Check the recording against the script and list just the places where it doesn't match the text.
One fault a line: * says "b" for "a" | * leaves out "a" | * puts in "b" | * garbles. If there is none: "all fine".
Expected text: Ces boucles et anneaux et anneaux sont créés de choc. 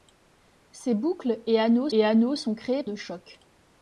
all fine